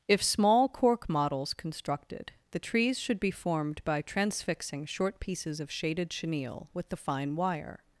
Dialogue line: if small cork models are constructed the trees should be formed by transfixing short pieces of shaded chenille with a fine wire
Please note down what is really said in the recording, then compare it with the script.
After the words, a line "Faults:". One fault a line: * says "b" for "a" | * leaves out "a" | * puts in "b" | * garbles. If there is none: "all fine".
if small cork models constructed the trees should be formed by transfixing short pieces of shaded chenille with the fine wire
Faults:
* leaves out "are"
* says "the" for "a"